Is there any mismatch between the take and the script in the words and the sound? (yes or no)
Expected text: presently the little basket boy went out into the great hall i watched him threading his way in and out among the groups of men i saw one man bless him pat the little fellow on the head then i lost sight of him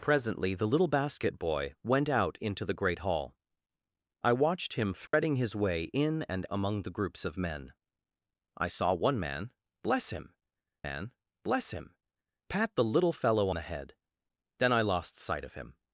yes